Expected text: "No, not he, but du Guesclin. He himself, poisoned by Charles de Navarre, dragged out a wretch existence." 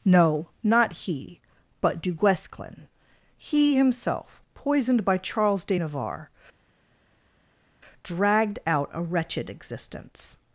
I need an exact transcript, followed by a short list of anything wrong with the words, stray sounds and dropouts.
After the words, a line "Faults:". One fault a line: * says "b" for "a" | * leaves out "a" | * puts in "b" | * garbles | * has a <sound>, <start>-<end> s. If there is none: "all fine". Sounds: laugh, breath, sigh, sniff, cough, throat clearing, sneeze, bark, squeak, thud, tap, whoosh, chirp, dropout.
"No, not he, but du Guesclin. He himself, poisoned by Charles de Navarre, dragged out a wretched existence."
Faults:
* says "wretched" for "wretch"